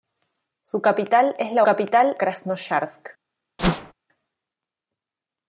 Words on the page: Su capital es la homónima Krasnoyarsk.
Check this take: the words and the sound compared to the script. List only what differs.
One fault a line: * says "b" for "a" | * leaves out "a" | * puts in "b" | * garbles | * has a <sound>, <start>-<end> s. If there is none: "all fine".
* says "capital" for "homónima"
* has a whoosh, 3.6-3.9 s